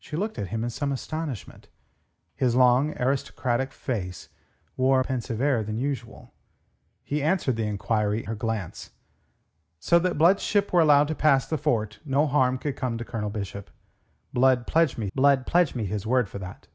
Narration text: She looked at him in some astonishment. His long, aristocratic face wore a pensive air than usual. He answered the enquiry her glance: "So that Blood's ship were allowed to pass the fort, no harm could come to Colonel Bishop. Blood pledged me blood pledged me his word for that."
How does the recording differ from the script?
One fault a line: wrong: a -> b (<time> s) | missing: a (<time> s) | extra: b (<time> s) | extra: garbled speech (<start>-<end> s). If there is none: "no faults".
no faults